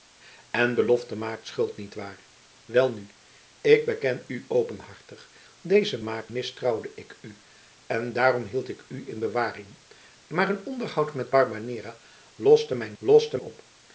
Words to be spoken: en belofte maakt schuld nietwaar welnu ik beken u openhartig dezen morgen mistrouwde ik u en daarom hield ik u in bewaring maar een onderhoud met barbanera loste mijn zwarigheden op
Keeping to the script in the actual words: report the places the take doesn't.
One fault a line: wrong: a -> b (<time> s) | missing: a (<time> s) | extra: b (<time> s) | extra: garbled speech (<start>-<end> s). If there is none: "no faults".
wrong: morgen -> maakt (6.0 s)
wrong: zwarigheden -> loste (13.0 s)